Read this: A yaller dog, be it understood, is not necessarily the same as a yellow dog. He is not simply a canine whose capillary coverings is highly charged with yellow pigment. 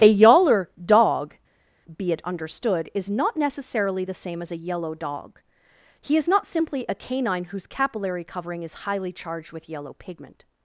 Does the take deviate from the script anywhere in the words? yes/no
yes